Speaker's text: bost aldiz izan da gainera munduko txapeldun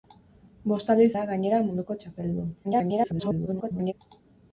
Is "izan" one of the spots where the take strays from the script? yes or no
yes